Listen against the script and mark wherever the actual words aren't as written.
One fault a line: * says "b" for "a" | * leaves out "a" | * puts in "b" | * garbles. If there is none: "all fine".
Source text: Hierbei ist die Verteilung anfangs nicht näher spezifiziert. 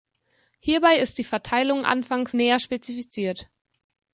* leaves out "nicht"